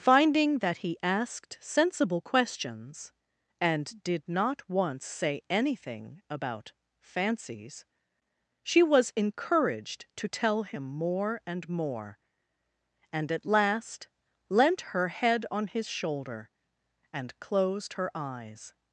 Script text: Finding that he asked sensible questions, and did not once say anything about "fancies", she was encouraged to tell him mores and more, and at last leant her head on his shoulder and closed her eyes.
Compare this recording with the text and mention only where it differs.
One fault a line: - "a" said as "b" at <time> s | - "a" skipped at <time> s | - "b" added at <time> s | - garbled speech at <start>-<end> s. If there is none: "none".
- "mores" said as "more" at 10.8 s